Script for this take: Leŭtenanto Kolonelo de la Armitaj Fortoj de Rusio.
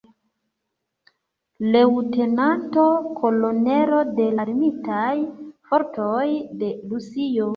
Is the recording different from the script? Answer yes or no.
yes